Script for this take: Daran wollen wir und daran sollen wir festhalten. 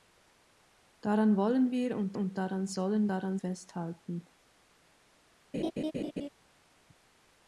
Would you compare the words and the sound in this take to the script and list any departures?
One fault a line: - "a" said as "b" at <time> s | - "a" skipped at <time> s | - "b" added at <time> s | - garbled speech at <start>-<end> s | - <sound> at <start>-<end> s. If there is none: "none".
- "und" added at 2.2 s
- "wir" said as "daran" at 3.1 s
- laugh at 5.5-6.3 s